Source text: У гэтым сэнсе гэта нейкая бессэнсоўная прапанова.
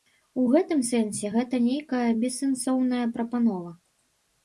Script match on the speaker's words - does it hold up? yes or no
yes